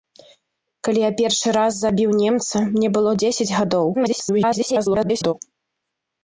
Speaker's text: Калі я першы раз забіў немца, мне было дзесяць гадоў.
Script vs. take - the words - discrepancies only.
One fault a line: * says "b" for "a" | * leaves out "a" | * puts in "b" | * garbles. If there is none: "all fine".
* garbles